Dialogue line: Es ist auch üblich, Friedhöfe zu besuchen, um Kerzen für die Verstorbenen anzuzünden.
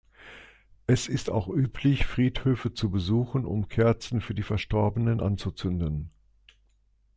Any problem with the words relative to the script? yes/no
no